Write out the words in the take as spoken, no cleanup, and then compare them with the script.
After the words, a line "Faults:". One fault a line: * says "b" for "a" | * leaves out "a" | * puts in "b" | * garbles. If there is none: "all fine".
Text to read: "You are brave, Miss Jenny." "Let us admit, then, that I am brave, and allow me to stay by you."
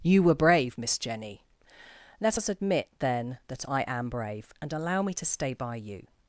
"You were brave, Miss Jenny." "Let us admit, then, that I am brave, and allow me to stay by you."
Faults:
* says "were" for "are"